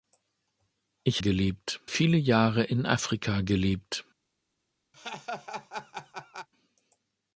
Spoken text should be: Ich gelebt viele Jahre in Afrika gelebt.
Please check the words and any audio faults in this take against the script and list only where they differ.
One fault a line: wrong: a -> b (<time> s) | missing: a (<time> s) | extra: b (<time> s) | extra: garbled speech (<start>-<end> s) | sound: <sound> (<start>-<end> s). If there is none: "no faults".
sound: laugh (4.9-6.5 s)